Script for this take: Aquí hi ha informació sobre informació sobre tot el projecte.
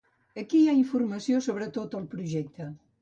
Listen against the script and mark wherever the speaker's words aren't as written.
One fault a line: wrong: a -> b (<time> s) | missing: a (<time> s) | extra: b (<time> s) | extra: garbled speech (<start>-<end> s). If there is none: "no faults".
missing: informació sobre (1.7 s)